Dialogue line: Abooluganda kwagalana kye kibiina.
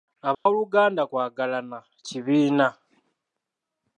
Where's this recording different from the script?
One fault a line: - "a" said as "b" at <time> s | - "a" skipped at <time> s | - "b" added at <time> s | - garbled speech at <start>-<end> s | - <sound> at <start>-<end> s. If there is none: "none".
- dropout at 0.3-0.5 s
- "kye" skipped at 1.8 s